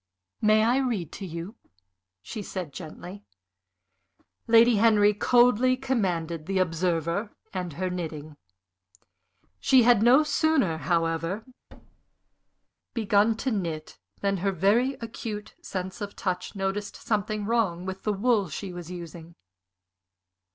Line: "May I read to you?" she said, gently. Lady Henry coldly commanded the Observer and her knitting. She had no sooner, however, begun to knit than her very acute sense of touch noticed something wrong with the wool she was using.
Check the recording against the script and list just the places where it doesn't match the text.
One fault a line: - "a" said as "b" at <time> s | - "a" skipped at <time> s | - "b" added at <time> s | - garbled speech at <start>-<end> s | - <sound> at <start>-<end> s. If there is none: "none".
- thud at 11.7-12.7 s